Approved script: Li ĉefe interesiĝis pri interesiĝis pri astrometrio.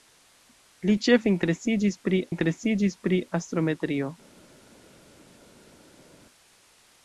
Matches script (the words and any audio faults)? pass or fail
pass